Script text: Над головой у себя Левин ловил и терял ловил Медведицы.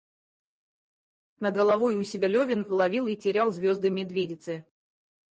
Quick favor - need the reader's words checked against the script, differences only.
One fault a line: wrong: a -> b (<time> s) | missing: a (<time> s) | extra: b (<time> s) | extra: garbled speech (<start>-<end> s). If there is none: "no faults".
wrong: ловил -> звезды (3.5 s)